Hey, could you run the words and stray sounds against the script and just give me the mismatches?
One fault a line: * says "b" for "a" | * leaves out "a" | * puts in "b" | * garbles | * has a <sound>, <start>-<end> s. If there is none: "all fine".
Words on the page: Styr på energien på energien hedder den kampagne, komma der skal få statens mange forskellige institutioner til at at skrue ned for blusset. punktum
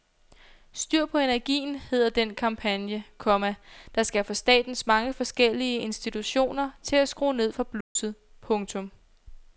* leaves out "på energien"
* leaves out "at"
* has a dropout, 7.8-8.0 s